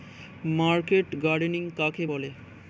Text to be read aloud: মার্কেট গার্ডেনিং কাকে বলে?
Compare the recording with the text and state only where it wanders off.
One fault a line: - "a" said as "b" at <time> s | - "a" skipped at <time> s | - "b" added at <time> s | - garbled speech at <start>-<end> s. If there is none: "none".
none